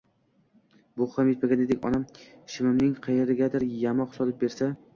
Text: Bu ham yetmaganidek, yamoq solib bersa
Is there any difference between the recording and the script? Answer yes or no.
yes